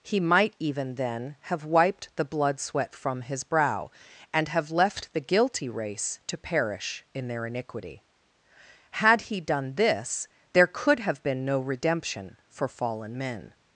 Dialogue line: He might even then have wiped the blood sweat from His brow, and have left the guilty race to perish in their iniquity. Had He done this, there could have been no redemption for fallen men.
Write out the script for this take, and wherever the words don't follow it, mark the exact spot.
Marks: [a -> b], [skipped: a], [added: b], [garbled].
He might even then have wiped the blood sweat from His brow, and have left the guilty race to perish in their iniquity. Had He done this, there could have been no redemption for fallen men.